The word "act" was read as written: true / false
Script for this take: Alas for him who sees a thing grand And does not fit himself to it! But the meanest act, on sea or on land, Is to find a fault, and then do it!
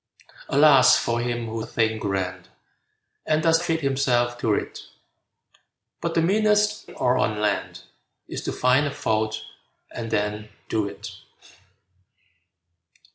false